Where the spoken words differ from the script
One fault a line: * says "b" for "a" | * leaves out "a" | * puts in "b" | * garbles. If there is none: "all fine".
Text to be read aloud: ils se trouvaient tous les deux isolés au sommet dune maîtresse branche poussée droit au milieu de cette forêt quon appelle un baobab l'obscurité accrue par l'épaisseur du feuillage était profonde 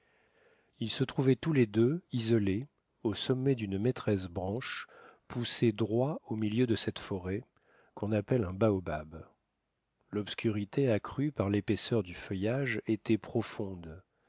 all fine